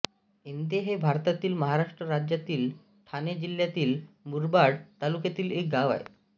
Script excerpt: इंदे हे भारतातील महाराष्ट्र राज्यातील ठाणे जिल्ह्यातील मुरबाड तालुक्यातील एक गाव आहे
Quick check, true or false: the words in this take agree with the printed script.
true